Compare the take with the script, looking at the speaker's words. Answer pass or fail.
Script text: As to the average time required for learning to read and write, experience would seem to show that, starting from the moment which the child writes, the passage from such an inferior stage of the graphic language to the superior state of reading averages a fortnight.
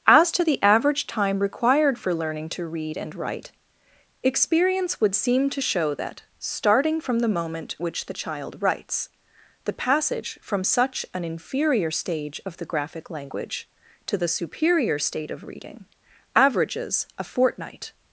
pass